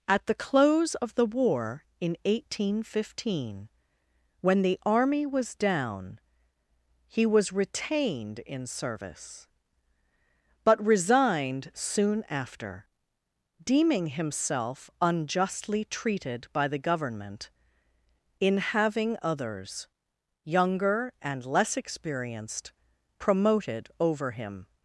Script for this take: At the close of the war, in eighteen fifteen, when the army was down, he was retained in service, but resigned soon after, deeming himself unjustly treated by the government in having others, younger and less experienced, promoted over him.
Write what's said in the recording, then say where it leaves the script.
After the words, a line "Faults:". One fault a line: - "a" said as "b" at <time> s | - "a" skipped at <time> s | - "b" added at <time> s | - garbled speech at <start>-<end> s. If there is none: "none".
At the close of the war, in eighteen fifteen, when the army was down, he was retained in service, but resigned soon after, deeming himself unjustly treated by the government in having others, younger and less experienced, promoted over him.
Faults:
none